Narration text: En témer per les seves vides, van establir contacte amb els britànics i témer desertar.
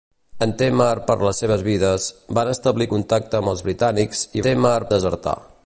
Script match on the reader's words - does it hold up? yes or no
yes